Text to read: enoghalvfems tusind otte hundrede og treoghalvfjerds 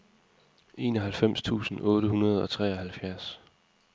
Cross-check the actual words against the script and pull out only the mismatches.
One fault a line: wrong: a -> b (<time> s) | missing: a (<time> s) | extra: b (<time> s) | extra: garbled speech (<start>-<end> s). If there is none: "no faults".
no faults